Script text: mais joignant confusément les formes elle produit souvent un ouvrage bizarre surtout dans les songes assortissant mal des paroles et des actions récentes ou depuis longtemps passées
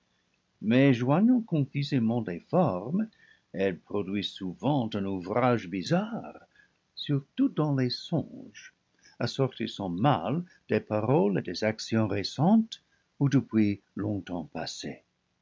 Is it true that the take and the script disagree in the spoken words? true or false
false